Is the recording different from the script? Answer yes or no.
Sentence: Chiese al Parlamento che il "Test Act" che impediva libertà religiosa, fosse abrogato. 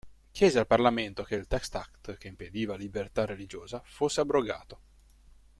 no